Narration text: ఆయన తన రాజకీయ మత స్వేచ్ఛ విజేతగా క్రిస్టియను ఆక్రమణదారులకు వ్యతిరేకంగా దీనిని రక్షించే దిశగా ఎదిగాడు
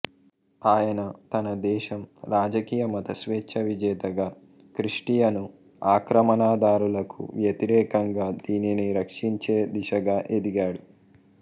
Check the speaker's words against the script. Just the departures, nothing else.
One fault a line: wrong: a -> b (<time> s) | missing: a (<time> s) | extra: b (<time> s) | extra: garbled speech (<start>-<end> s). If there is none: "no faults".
extra: దేశం (1.6 s)